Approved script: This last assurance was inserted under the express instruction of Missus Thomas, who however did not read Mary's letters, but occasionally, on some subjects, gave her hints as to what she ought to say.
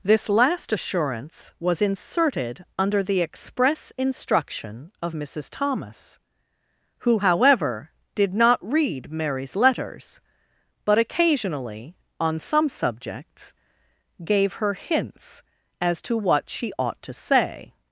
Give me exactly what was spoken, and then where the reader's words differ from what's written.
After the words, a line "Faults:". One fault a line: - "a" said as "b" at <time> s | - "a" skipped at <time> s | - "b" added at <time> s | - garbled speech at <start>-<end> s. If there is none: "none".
This last assurance was inserted under the express instruction of Missus Thomas, who however did not read Mary's letters, but occasionally, on some subjects, gave her hints as to what she ought to say.
Faults:
none